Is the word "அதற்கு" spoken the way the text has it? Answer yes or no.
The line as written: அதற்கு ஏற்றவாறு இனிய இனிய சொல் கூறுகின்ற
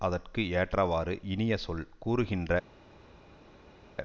yes